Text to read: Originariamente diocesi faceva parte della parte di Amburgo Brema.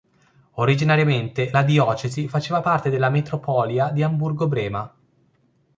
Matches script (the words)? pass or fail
fail